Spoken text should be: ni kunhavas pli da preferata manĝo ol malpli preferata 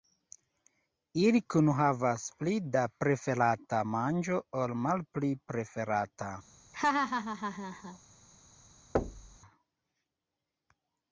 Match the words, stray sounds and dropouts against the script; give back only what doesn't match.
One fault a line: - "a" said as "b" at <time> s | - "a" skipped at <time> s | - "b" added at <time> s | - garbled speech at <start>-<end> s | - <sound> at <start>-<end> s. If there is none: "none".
- "ni" said as "ili" at 1.2 s
- laugh at 6.7-8.0 s
- thud at 8.9-9.4 s